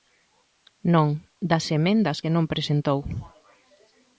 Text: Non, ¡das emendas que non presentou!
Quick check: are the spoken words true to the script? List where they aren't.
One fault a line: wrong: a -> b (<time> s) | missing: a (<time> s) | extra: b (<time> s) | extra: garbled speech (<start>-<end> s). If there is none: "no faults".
no faults